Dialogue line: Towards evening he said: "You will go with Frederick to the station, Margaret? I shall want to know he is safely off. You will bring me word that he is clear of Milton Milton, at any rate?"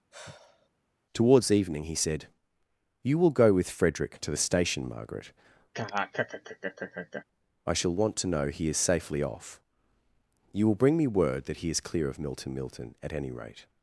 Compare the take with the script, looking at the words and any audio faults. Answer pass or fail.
fail